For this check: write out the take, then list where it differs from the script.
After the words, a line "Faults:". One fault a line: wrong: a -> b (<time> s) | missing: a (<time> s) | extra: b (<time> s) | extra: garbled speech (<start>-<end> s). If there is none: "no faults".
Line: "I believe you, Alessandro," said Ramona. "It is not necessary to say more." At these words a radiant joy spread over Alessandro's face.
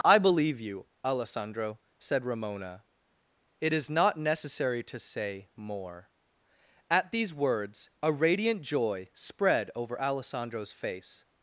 "I believe you, Alessandro," said Ramona. "It is not necessary to say more." At these words a radiant joy spread over Alessandro's face.
Faults:
no faults